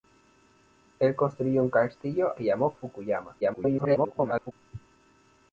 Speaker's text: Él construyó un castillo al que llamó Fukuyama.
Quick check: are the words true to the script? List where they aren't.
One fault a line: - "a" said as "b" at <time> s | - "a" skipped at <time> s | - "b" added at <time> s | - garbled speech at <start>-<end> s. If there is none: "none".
- "al" skipped at 2.3 s
- garbled speech at 3.4-4.5 s